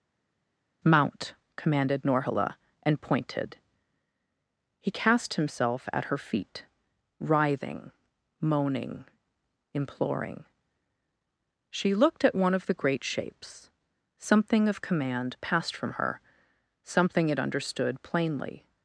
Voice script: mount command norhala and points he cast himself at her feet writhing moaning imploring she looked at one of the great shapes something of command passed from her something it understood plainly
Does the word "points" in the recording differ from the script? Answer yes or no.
yes